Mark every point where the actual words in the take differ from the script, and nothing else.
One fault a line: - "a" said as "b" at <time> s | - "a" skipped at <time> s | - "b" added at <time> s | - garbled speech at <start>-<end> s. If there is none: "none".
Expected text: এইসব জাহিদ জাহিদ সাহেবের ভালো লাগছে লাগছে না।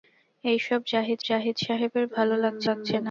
none